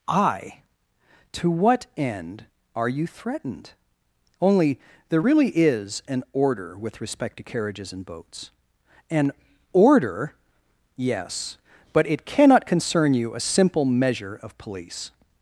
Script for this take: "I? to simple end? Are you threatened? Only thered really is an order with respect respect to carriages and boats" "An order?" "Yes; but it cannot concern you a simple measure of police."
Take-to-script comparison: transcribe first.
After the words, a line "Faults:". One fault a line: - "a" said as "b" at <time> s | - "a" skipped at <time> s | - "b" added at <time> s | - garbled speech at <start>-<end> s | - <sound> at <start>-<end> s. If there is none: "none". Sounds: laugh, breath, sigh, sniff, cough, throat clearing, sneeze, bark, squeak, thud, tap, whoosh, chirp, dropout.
"I? to what end? Are you threatened? Only there really is an order with respect to carriages and boats" "An order?" "Yes; but it cannot concern you a simple measure of police."
Faults:
- "simple" said as "what" at 1.5 s
- "thered" said as "there" at 5.1 s
- "respect" skipped at 7.4 s